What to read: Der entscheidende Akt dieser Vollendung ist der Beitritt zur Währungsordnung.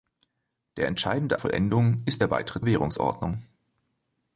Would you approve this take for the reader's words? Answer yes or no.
no